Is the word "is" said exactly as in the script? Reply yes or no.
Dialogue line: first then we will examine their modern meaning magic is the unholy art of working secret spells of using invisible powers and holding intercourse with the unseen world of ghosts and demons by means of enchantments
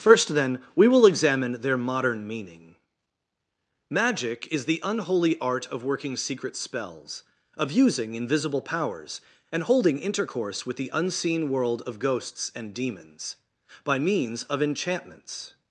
yes